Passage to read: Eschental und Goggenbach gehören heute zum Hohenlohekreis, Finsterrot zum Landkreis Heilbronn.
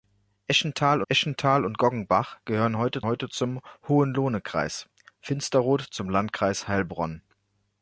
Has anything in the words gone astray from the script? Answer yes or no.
yes